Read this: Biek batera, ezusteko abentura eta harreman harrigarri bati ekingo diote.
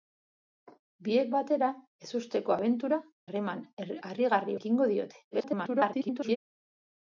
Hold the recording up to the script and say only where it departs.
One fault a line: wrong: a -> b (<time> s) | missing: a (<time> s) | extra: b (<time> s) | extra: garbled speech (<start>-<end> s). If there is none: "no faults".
missing: eta (3.0 s)
missing: bati (4.6 s)
extra: garbled speech (5.3-6.4 s)